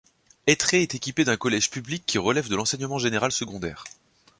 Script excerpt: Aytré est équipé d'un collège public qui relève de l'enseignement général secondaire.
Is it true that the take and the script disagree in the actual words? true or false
false